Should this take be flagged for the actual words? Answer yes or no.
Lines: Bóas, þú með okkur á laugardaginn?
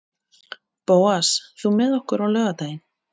no